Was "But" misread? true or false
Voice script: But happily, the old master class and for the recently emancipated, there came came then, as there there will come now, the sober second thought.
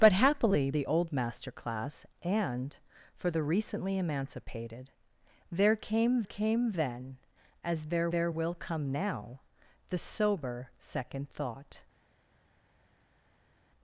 false